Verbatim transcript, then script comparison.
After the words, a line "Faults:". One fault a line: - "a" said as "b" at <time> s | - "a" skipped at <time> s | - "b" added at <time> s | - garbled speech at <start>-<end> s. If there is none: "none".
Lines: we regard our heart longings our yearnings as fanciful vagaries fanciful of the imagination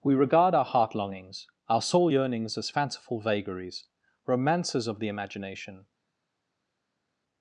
we regard our heart longings our soul yearnings as fanciful vagaries romances of the imagination
Faults:
- "soul" added at 1.8 s
- "fanciful" said as "romances" at 4.3 s